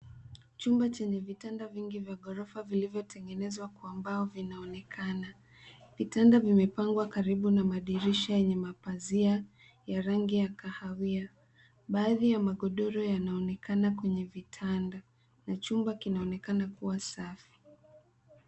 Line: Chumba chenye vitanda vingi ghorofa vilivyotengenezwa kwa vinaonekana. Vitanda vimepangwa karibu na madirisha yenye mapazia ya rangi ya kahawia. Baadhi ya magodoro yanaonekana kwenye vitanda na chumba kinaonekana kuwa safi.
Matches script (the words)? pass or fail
fail